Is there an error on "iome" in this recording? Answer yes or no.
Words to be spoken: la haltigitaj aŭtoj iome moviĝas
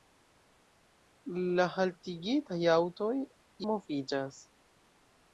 yes